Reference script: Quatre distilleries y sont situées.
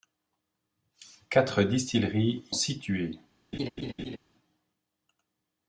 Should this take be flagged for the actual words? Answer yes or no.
yes